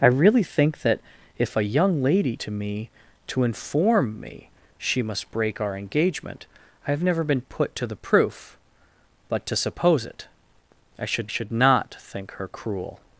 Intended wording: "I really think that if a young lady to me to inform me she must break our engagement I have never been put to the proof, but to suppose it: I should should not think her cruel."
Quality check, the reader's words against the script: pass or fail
pass